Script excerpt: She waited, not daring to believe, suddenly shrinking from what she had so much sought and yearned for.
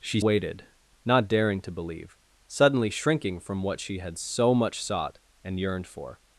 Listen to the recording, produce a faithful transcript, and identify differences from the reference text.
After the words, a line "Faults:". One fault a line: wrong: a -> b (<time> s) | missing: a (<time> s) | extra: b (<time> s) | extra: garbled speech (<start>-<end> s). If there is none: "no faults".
She waited, not daring to believe, suddenly shrinking from what she had so much sought and yearned for.
Faults:
no faults